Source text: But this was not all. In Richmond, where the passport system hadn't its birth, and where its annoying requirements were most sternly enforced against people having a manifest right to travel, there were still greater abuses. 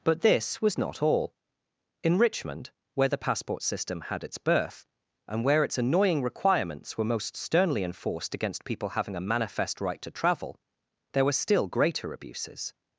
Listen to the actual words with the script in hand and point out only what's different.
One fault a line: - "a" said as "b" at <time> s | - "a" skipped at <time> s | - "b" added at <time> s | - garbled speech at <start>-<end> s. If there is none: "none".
- "hadn't" said as "had" at 4.0 s